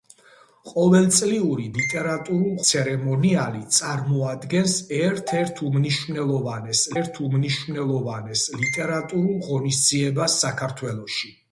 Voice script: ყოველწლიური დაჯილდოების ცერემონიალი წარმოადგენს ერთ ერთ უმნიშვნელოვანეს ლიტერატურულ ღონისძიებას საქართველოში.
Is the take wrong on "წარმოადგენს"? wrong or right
right